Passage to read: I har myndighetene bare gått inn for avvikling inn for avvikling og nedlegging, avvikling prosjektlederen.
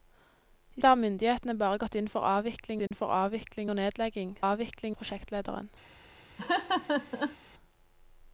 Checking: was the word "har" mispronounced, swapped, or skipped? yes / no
no